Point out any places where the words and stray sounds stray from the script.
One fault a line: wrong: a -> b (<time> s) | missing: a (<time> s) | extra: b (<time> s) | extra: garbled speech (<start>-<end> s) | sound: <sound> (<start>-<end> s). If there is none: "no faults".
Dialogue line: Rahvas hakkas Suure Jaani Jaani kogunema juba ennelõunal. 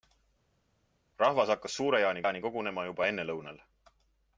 no faults